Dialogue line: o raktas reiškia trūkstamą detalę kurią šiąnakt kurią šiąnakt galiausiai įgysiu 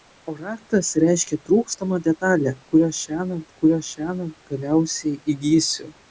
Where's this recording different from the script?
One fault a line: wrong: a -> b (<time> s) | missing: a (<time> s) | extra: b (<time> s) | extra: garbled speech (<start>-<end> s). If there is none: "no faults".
no faults